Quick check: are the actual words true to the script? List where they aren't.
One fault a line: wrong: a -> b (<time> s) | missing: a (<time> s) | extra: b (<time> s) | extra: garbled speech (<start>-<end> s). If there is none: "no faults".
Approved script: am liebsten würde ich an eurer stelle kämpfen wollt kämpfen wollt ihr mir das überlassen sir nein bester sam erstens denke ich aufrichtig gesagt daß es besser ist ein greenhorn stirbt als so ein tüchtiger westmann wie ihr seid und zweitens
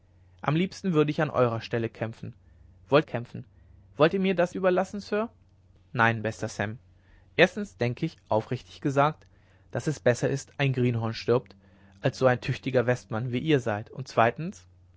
no faults